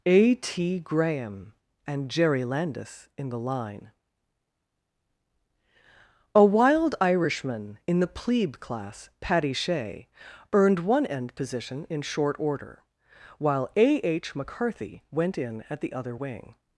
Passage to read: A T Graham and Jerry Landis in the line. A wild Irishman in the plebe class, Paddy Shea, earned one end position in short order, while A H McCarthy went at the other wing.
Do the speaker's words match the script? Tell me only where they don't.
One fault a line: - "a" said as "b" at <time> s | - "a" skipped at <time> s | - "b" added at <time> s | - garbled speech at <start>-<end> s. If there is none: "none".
- "in" added at 15.4 s